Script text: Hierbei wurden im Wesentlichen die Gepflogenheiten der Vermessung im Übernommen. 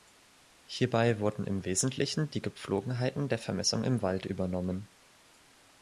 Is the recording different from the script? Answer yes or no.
yes